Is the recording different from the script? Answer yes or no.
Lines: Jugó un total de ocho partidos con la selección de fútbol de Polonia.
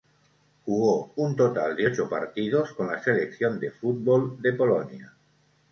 no